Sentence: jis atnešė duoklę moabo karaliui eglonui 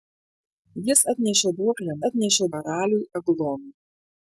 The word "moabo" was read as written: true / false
false